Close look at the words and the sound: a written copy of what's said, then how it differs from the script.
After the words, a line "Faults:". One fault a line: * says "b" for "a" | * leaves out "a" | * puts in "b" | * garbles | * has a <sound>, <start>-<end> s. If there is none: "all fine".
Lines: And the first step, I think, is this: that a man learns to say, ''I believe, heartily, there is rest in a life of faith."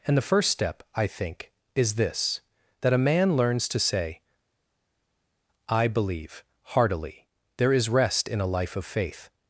And the first step, I think, is this: that a man learns to say, ''I believe, heartily, there is rest in a life of faith."
Faults:
all fine